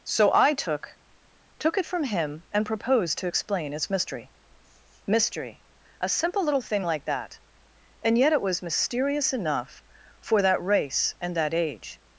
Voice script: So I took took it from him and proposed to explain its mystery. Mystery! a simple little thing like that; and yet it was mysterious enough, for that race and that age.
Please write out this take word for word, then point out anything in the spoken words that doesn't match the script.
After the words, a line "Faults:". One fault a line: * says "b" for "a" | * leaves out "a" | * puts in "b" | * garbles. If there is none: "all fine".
So I took took it from him and proposed to explain its mystery. Mystery! a simple little thing like that; and yet it was mysterious enough, for that race and that age.
Faults:
all fine